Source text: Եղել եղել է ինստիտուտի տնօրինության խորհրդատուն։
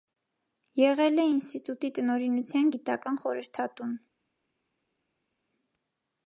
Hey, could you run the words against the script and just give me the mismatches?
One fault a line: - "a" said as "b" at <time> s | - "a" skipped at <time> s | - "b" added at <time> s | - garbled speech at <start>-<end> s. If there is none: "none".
- "եղել" skipped at 1.2 s
- "գիտական" added at 2.8 s